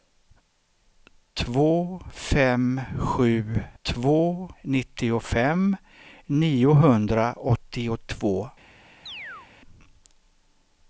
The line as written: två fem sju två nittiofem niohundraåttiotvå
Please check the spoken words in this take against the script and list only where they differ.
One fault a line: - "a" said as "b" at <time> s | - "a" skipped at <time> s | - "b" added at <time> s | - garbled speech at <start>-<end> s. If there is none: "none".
none